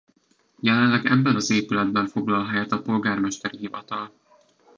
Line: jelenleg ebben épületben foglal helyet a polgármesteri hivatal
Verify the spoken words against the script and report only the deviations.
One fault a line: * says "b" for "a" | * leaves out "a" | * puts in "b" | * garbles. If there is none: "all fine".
* puts in "az"